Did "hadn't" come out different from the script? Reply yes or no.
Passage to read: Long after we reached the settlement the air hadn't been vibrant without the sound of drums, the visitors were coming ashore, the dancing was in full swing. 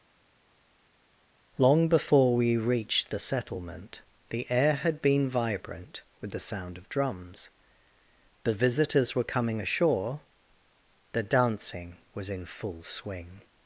yes